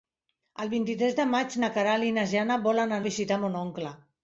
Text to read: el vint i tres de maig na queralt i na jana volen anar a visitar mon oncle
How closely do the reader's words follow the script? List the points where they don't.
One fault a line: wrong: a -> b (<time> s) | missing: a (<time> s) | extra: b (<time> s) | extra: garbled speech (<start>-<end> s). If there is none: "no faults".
missing: anar (3.0 s)